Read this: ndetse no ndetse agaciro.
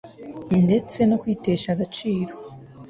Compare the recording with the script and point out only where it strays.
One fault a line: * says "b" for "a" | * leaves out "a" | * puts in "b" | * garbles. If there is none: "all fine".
* says "kwitesha" for "ndetse"